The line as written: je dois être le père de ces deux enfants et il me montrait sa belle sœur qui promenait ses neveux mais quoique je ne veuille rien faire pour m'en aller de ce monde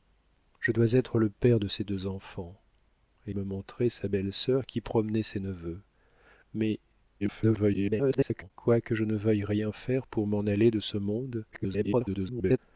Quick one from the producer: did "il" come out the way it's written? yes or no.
no